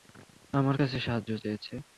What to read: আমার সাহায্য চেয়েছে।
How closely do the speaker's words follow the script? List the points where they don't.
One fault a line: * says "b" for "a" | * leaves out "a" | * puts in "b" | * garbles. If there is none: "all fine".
* puts in "কাছে"